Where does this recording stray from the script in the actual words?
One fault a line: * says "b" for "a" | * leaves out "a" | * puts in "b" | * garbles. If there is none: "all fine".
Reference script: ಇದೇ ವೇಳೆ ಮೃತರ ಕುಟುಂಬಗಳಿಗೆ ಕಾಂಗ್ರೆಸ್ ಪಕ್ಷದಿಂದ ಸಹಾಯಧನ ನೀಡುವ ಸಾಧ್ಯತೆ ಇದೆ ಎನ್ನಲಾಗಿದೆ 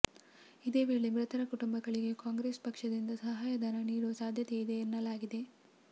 all fine